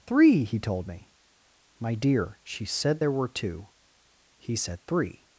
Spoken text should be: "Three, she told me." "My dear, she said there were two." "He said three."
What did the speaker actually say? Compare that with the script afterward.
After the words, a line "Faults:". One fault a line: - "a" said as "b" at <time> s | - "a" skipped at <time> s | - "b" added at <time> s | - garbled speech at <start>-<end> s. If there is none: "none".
"Three, he told me." "My dear, she said there were two." "He said three."
Faults:
- "she" said as "he" at 0.4 s